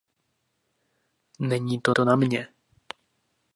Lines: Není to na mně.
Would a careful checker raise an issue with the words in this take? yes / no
yes